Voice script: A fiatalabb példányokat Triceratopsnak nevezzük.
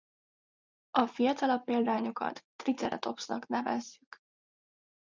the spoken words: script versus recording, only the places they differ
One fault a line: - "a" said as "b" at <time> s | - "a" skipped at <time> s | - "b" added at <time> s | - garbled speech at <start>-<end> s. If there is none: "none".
none